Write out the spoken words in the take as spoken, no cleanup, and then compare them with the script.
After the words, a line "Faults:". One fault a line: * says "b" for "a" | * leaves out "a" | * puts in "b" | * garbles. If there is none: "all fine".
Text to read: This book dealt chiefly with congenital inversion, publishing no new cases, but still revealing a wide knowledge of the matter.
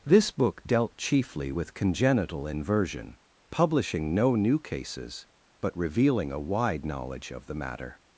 This book dealt chiefly with congenital inversion, publishing no new cases, but revealing a wide knowledge of the matter.
Faults:
* leaves out "still"